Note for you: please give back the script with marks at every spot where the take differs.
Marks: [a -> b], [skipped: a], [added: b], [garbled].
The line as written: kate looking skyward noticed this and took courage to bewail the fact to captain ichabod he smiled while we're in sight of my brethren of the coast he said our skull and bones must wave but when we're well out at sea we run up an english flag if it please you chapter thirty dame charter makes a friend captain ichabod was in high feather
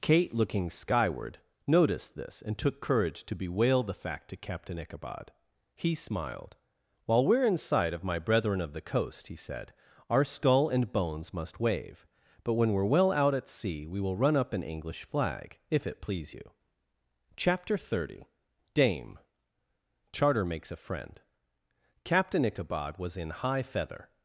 kate looking skyward noticed this and took courage to bewail the fact to captain ichabod he smiled while we're in sight of my brethren of the coast he said our skull and bones must wave but when we're well out at sea we [added: will] run up an english flag if it please you chapter thirty dame charter makes a friend captain ichabod was in high feather